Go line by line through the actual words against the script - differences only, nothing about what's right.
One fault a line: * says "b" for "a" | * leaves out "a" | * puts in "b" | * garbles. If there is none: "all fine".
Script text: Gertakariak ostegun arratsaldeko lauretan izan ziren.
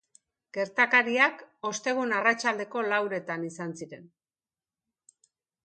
all fine